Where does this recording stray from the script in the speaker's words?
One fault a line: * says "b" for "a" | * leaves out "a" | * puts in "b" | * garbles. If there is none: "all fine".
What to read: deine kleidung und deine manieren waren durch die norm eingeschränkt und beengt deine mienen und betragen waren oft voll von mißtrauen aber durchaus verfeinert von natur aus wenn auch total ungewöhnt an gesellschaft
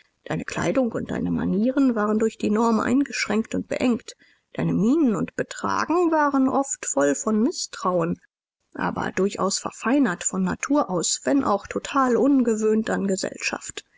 all fine